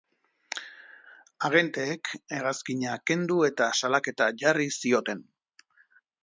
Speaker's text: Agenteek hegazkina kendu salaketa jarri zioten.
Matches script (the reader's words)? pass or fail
fail